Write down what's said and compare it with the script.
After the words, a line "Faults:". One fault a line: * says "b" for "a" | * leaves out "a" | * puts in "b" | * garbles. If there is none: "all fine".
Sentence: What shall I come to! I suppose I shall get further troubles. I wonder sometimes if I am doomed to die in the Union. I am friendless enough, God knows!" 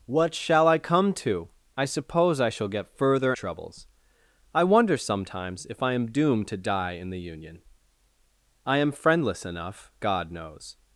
What shall I come to! I suppose I shall get further troubles. I wonder sometimes if I am doomed to die in the Union. I am friendless enough, God knows!"
Faults:
all fine